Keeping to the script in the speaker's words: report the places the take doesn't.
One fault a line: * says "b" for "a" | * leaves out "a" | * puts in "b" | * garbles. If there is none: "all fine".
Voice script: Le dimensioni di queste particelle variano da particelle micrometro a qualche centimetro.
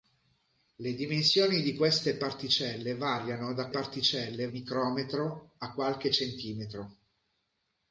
all fine